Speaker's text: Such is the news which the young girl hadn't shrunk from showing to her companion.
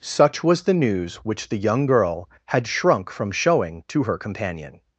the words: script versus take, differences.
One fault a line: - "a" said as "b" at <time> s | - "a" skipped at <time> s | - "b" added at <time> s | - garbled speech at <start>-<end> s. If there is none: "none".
- "is" said as "was" at 0.4 s
- "hadn't" said as "had" at 2.5 s